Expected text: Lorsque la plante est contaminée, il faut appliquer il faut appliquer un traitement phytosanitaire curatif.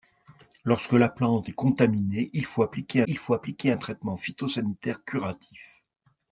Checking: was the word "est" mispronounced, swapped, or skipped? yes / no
no